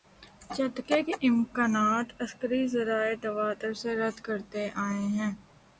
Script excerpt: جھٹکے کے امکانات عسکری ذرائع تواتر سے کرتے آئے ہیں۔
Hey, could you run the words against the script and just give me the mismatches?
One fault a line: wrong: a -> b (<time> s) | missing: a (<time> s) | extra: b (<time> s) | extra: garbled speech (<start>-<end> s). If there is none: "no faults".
extra: رد (4.0 s)